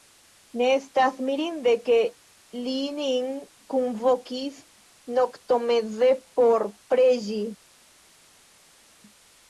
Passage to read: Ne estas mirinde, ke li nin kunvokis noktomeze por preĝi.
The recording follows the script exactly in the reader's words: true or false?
true